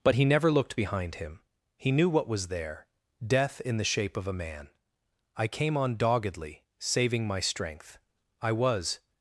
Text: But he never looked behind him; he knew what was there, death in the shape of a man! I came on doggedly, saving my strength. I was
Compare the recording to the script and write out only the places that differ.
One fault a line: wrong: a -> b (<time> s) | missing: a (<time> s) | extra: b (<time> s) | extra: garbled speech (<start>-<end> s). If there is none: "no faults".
no faults